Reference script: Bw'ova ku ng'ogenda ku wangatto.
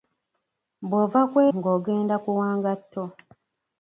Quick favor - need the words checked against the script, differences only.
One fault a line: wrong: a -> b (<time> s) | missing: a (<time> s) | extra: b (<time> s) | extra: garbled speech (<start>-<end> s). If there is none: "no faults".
no faults